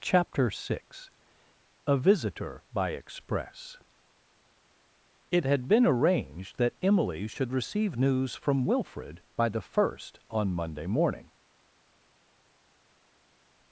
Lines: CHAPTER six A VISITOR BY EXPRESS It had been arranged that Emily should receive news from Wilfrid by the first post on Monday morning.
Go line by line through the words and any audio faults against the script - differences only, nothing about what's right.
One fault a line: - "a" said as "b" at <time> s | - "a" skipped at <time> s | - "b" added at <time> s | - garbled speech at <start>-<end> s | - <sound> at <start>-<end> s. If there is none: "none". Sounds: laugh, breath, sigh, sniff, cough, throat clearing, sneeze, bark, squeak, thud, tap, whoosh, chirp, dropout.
- "post" skipped at 10.2 s